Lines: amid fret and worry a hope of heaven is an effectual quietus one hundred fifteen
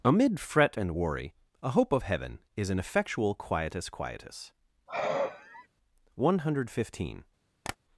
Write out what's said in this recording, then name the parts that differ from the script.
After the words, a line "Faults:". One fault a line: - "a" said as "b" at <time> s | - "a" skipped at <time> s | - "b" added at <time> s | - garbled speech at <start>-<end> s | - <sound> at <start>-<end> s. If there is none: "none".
amid fret and worry a hope of heaven is an effectual quietus quietus one hundred fifteen
Faults:
- "quietus" added at 3.9 s
- sigh at 4.9-5.7 s
- tap at 7.6-7.8 s